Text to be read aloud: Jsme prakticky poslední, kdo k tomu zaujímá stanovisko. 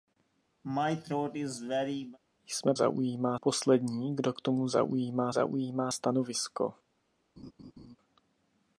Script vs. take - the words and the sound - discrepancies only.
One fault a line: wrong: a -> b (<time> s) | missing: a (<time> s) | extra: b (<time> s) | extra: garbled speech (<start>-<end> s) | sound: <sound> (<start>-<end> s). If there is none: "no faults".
sound: throat clearing (0.6-2.2 s)
wrong: prakticky -> zaujímá (2.7 s)
extra: zaujímá (5.3 s)
sound: laugh (7.4-8.0 s)